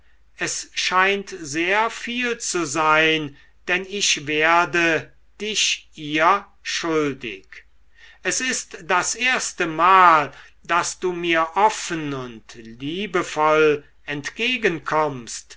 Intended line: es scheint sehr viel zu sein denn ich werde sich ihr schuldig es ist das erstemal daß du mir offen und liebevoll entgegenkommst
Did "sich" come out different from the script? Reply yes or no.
yes